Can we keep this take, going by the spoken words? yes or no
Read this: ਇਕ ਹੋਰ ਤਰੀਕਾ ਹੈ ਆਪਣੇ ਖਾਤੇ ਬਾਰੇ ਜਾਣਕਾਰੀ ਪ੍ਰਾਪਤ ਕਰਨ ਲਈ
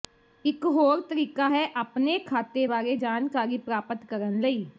yes